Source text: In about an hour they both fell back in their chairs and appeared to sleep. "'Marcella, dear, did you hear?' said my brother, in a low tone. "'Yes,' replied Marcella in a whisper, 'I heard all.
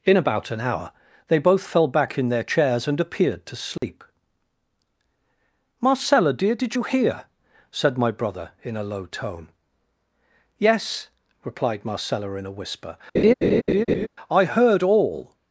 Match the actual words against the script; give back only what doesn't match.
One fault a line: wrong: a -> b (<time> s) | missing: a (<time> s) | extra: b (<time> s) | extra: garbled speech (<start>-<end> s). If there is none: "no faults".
no faults